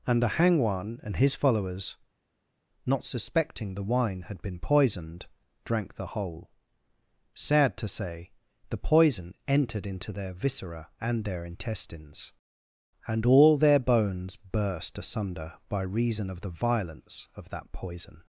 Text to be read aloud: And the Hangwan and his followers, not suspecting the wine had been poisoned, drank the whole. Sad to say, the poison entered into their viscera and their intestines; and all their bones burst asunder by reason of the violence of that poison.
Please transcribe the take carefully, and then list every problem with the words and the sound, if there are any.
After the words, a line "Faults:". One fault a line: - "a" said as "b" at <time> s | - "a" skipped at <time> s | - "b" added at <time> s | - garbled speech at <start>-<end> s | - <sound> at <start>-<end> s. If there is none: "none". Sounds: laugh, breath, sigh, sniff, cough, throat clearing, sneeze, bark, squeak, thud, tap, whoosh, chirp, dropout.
And the Hangwan and his followers, not suspecting the wine had been poisoned, drank the whole. Sad to say, the poison entered into their viscera and their intestines; and all their bones burst asunder by reason of the violence of that poison.
Faults:
none